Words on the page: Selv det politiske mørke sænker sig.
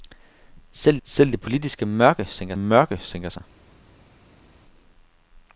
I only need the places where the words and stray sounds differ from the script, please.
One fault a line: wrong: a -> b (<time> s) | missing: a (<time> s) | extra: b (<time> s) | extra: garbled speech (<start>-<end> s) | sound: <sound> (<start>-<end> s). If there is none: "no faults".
extra: selv (1.0 s)
extra: mørke sænker (2.6 s)